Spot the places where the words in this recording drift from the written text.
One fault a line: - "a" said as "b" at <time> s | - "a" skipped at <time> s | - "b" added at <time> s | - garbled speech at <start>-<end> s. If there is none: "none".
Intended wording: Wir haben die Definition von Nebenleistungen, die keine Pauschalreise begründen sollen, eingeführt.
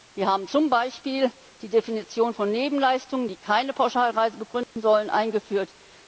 - "zum Beispiel" added at 0.5 s